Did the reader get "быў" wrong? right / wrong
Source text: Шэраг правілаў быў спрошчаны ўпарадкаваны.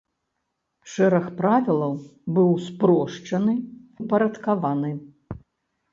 right